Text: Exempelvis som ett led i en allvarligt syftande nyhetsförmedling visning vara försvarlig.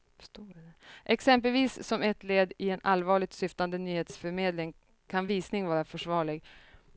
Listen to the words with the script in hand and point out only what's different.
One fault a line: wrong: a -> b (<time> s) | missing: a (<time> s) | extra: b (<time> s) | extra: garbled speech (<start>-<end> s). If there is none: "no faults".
extra: kan (5.1 s)